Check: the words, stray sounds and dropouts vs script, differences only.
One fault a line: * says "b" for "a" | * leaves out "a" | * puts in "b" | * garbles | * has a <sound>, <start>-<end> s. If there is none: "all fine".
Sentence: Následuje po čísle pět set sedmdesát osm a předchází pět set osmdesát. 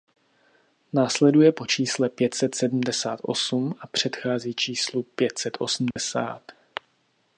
* puts in "číslu"
* has a dropout, 5.9-6.0 s